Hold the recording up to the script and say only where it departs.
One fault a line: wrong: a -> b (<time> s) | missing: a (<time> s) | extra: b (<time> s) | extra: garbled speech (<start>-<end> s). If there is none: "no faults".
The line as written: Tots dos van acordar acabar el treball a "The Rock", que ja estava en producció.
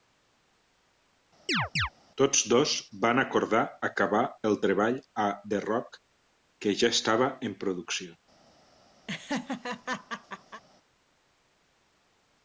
no faults